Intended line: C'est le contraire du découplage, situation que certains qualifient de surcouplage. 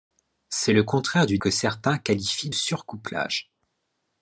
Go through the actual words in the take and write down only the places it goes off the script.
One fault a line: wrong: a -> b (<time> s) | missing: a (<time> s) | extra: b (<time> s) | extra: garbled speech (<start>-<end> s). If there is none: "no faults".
missing: découplage situation (1.4 s)
missing: de (2.5 s)